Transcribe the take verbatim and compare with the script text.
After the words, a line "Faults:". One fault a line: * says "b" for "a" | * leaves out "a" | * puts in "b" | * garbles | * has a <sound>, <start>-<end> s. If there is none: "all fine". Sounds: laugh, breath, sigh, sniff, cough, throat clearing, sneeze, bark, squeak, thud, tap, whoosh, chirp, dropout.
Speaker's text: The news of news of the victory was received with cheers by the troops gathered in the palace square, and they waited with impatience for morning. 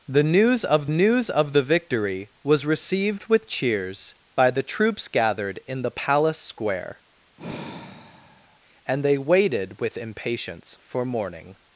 The news of news of the victory was received with cheers by the troops gathered in the palace square, and they waited with impatience for morning.
Faults:
* has a sigh, 7.4-8.6 s